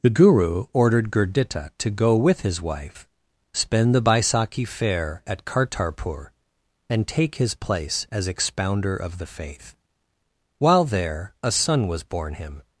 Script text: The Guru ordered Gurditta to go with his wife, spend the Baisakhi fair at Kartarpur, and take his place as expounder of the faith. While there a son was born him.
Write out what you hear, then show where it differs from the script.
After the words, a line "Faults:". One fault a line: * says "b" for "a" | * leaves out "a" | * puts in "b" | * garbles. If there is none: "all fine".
The Guru ordered Gurditta to go with his wife, spend the Baisakhi fair at Kartarpur, and take his place as expounder of the faith. While there a son was born him.
Faults:
all fine